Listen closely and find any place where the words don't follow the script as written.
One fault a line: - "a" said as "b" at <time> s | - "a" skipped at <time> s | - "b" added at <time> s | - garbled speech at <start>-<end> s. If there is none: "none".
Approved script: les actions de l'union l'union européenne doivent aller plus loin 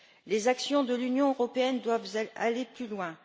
- "l'union" skipped at 1.3 s